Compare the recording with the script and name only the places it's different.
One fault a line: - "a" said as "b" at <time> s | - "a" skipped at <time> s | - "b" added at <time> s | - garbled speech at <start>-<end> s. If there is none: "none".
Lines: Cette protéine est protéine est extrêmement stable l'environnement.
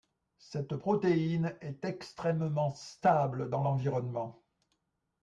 - "protéine est" skipped at 1.8 s
- "dans" added at 3.5 s